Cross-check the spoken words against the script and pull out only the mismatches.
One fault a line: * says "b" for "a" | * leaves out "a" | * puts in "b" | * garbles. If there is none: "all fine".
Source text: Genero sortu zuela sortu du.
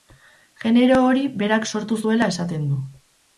* puts in "hori berak"
* says "esaten" for "sortu"